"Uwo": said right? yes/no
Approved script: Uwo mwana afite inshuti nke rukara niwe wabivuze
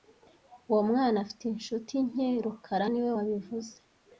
yes